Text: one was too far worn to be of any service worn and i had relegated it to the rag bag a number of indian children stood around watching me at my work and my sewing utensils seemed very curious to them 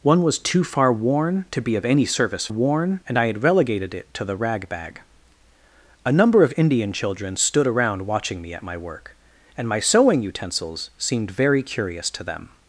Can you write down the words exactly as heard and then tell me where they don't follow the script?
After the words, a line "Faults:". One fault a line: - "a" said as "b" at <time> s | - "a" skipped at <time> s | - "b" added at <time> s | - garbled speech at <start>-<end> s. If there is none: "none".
one was too far worn to be of any service worn and i had relegated it to the rag bag a number of indian children stood around watching me at my work and my sewing utensils seemed very curious to them
Faults:
none